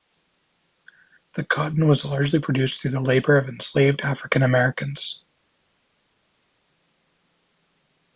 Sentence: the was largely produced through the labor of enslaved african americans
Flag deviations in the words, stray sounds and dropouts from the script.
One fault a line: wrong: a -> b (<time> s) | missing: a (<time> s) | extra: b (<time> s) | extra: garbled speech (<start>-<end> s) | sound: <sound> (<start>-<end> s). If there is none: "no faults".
extra: cotton (1.4 s)